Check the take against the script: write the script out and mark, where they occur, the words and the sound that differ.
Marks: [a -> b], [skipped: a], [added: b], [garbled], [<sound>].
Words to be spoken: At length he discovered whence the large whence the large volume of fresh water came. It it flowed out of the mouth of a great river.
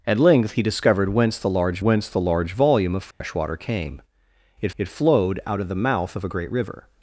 At length he discovered whence the large whence the large volume of fresh [dropout] water came. It it flowed out of the mouth of a great river.